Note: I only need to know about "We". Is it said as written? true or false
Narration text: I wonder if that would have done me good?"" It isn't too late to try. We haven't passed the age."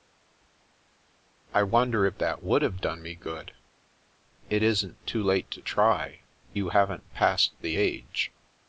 false